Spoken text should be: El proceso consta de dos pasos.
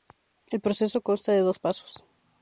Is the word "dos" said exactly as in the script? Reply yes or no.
yes